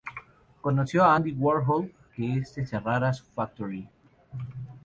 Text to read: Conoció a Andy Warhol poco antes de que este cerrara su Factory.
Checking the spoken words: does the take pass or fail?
fail